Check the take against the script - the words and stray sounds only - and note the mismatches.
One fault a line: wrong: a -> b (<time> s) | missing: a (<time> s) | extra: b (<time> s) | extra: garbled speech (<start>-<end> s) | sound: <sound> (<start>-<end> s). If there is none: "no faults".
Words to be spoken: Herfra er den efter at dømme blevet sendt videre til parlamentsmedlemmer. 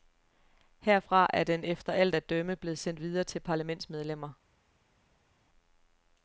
extra: alt (1.9 s)